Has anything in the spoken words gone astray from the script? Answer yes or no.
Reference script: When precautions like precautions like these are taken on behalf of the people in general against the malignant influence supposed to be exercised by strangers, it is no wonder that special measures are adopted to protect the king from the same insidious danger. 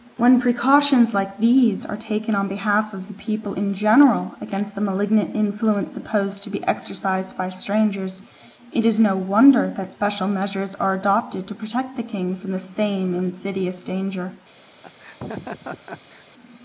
yes